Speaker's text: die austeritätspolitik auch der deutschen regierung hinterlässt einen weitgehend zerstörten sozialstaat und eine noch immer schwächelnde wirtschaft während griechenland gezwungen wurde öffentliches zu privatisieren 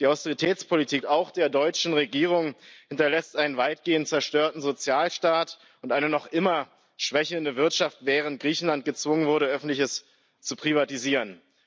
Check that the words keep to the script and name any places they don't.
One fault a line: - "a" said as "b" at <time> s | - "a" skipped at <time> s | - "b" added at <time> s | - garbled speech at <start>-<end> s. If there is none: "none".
none